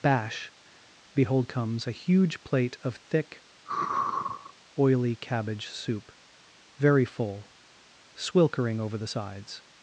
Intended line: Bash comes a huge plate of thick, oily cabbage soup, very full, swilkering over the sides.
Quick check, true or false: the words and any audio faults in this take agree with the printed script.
false